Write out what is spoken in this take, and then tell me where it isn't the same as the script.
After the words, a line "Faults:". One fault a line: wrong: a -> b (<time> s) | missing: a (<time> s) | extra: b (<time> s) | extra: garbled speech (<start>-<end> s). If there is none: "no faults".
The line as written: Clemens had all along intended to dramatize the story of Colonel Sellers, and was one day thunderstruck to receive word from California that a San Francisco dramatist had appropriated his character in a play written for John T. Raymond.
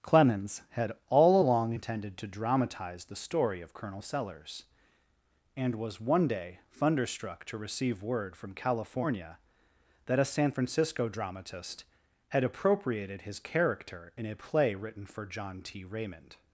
Clemens had all along intended to dramatize the story of Colonel Sellers, and was one day thunderstruck to receive word from California that a San Francisco dramatist had appropriated his character in a play written for John T. Raymond.
Faults:
no faults